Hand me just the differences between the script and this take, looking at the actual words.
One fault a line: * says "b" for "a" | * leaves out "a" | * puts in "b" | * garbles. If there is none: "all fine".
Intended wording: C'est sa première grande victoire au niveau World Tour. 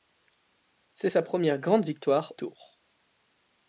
* leaves out "au niveau World"